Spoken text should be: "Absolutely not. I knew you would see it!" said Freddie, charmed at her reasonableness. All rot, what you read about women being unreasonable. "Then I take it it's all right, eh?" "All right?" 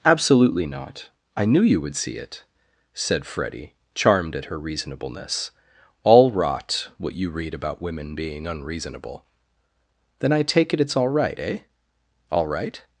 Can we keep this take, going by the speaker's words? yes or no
yes